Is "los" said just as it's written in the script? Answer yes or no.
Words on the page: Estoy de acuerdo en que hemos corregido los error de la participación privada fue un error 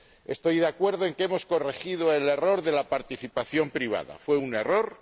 no